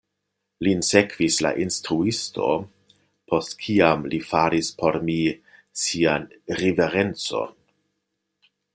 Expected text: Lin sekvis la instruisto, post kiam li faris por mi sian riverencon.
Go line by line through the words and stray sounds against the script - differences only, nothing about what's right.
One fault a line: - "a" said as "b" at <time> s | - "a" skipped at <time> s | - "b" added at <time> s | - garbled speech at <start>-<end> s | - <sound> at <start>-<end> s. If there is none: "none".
none